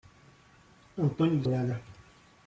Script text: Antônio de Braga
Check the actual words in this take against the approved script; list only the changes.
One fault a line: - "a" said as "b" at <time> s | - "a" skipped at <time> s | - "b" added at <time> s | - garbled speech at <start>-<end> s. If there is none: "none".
none